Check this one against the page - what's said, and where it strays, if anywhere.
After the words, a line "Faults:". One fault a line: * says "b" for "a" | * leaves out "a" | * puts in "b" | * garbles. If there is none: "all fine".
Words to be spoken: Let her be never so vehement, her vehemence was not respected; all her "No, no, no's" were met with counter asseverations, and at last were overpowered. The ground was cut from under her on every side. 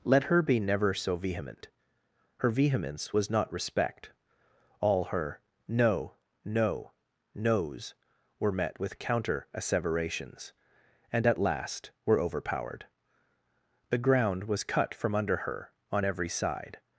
Let her be never so vehement, her vehemence was not respect; all her "No, no, no's" were met with counter asseverations, and at last were overpowered. The ground was cut from under her on every side.
Faults:
* says "respect" for "respected"